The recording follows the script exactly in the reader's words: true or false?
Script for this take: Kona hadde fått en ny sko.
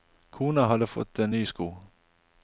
true